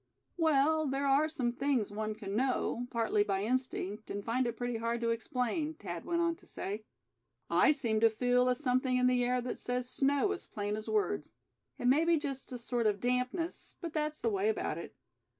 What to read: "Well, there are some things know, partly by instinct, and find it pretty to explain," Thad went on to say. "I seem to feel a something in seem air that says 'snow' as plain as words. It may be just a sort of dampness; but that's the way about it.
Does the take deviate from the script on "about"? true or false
false